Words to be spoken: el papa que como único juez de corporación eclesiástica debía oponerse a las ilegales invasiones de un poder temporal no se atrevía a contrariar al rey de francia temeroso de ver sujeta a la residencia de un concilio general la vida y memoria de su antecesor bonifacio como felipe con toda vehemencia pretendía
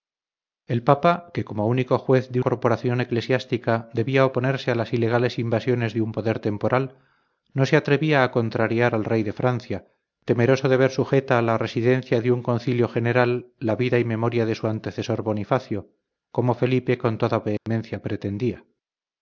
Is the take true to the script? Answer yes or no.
yes